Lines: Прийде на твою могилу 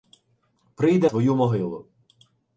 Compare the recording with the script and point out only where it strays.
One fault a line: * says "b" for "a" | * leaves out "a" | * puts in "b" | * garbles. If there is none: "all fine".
* leaves out "на"